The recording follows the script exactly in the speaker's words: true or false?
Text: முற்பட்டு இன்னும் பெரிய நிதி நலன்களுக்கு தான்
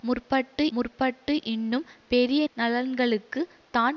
false